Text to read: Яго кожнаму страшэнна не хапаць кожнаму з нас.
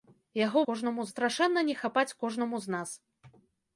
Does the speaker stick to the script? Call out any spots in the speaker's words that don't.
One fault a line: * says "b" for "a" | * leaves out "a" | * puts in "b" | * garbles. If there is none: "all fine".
all fine